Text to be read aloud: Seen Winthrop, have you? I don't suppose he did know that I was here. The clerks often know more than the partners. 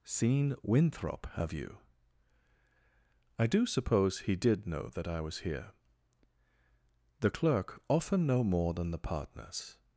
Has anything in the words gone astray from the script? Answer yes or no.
yes